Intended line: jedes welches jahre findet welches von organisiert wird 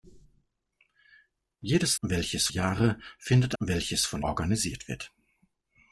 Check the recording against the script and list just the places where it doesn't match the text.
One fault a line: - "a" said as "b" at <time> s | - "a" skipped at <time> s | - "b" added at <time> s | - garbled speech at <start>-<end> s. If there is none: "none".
none